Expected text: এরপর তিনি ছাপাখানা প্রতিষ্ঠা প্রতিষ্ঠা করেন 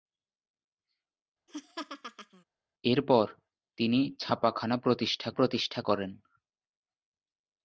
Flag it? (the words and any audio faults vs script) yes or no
yes